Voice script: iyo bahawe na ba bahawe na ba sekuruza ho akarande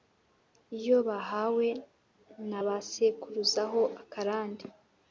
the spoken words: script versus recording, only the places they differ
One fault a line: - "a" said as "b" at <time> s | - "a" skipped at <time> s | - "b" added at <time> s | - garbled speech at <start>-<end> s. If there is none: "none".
- "bahawe na ba" skipped at 2.8 s